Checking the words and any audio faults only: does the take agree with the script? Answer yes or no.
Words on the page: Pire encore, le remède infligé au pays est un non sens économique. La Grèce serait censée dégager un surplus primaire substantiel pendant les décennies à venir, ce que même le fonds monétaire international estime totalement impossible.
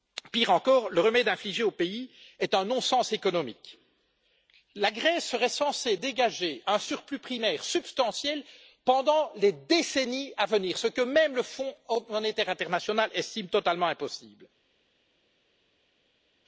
yes